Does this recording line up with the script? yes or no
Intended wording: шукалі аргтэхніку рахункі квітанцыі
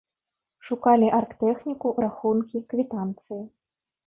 yes